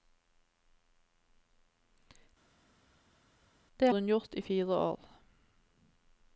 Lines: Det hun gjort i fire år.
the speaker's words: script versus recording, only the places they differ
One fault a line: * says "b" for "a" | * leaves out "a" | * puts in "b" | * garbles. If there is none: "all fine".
all fine